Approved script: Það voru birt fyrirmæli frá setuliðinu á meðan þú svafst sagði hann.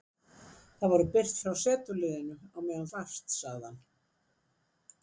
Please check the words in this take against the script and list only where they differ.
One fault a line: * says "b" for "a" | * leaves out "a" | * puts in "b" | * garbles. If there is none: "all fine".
* leaves out "fyrirmæli"
* leaves out "þú"